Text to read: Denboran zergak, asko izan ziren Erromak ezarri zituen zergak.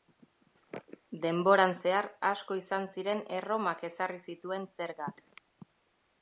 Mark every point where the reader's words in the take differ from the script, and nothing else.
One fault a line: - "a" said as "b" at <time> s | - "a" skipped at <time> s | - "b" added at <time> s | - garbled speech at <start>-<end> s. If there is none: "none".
- "zergak" said as "zehar" at 1.8 s